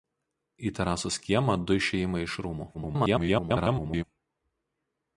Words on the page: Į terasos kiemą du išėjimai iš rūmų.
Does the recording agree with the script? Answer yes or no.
no